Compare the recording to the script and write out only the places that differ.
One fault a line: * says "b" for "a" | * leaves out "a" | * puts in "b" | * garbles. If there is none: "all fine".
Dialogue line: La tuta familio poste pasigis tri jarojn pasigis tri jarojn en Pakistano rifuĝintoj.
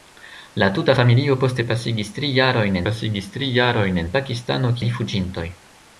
all fine